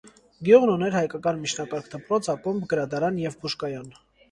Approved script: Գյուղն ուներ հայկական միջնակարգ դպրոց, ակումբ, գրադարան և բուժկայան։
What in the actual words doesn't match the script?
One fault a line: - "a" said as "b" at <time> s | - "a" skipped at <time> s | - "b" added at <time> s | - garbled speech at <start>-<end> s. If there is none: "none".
none